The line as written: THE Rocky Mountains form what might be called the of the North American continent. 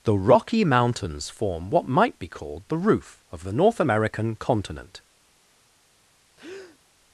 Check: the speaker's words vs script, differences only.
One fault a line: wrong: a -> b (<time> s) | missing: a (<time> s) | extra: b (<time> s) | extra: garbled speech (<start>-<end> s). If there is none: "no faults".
extra: roof (2.8 s)